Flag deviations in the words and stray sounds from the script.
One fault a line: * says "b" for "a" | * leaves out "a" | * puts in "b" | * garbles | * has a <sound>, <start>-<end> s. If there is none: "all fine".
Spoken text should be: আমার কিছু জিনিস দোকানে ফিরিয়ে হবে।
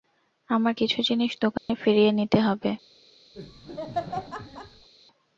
* has a dropout, 1.6-1.7 s
* puts in "নিতে"
* has a laugh, 3.3-4.9 s